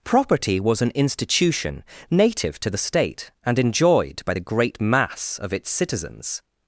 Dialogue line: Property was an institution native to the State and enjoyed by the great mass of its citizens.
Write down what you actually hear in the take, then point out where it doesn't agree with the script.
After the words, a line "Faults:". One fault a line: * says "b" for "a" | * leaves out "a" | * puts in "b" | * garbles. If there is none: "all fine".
Property was an institution native to the State and enjoyed by the great mass of its citizens.
Faults:
all fine